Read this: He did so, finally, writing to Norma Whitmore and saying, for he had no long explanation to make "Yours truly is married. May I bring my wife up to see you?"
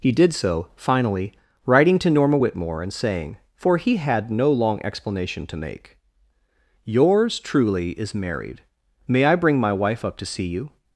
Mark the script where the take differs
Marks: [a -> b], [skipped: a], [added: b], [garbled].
He did so, finally, writing to Norma Whitmore and saying, for he had no long explanation to make "Yours truly is married. May I bring my wife up to see you?"